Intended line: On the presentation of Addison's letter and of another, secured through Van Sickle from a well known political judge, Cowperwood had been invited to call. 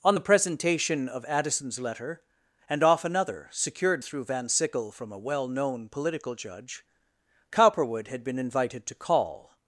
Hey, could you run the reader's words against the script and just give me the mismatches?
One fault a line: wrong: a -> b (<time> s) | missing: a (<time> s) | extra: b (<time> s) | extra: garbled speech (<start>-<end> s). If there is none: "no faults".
wrong: of -> off (2.8 s)